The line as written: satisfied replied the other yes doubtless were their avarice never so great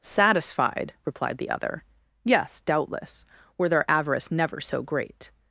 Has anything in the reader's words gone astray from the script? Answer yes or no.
no